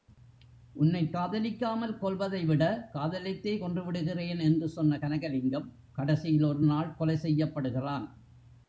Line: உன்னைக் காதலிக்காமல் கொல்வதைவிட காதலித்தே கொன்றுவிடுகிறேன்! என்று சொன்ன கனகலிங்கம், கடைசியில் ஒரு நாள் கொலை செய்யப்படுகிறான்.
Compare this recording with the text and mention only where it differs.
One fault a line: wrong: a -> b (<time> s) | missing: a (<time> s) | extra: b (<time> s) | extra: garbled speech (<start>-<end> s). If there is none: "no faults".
no faults